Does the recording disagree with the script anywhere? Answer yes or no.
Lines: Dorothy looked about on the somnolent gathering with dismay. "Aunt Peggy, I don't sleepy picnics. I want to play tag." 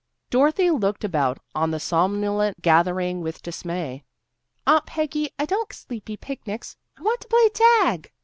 no